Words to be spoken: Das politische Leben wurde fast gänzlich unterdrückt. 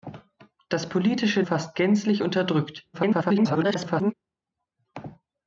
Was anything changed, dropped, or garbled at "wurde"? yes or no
yes